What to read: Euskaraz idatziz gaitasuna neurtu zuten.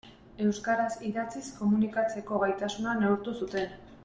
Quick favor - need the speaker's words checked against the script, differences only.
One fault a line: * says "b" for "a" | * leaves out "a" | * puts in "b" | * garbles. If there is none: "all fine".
* puts in "komunikatzeko"